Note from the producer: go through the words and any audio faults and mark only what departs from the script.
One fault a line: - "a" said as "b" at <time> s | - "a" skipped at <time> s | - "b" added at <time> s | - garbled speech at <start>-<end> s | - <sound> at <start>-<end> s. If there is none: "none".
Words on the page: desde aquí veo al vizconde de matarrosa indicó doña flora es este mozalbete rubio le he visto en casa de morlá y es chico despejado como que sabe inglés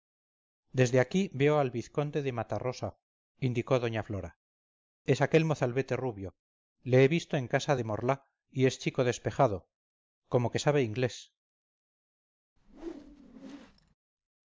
- "este" said as "aquel" at 5.2 s
- whoosh at 12.6-13.9 s